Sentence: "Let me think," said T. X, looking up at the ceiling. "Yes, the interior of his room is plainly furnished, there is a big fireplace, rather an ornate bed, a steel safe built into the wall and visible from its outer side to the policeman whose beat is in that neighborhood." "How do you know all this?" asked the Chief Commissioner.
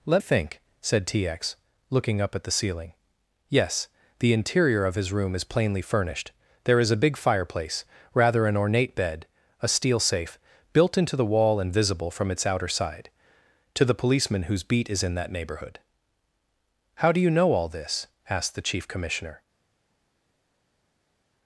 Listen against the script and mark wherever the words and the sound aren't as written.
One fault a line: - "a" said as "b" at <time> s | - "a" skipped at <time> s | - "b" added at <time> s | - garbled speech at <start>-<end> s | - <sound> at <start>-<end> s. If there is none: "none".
- "me" skipped at 0.2 s